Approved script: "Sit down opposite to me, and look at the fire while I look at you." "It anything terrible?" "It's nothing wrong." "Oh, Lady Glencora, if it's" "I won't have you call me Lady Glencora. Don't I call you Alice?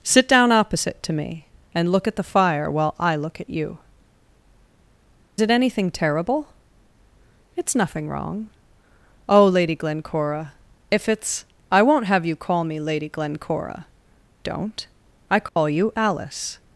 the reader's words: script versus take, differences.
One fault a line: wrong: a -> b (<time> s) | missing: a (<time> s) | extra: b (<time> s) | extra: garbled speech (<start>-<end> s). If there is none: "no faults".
no faults